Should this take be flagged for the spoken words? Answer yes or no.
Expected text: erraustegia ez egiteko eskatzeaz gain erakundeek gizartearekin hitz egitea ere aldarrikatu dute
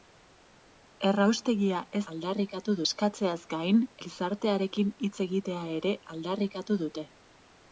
yes